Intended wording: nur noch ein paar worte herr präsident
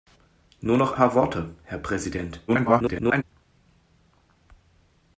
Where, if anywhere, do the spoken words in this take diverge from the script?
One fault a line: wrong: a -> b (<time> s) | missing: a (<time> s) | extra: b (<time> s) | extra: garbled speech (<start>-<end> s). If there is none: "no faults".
missing: ein (0.9 s)
extra: garbled speech (2.5-3.2 s)